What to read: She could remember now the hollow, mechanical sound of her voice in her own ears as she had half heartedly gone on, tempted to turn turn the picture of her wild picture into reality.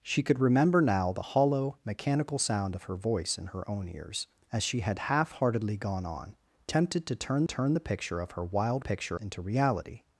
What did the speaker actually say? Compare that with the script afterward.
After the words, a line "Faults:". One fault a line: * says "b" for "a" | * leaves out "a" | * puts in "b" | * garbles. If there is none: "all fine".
She could remember now the hollow, mechanical sound of her voice in her own ears as she had half heartedly gone on, tempted to turn turn the picture of her wild picture into reality.
Faults:
all fine